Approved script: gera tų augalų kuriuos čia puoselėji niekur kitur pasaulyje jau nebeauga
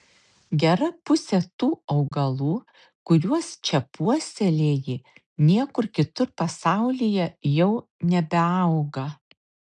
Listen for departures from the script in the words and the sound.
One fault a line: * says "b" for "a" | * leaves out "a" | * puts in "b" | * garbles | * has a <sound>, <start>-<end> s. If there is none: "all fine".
* puts in "pusė"
* has a dropout, 2.1-2.1 s